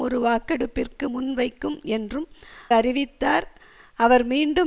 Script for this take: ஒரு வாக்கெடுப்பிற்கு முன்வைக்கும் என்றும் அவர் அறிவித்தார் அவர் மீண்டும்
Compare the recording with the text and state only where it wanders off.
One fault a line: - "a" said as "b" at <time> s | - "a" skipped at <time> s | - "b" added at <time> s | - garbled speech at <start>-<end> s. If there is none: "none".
- "அவர்" skipped at 2.3 s